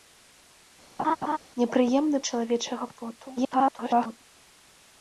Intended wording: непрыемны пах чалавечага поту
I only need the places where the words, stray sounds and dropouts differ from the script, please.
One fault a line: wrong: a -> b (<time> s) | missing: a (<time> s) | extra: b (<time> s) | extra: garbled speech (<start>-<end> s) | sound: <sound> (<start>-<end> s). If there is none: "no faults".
sound: laugh (1.0-1.4 s)
missing: пах (2.2 s)
extra: garbled speech (3.4-4.2 s)